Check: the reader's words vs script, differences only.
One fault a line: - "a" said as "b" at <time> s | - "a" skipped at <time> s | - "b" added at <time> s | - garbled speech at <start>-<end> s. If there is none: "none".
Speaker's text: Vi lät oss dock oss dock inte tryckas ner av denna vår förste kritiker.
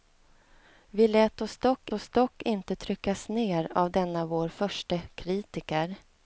none